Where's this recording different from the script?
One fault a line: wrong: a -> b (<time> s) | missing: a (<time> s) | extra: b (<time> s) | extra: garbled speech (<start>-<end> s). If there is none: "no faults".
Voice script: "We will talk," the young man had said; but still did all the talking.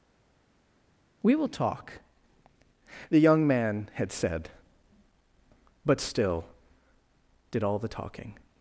no faults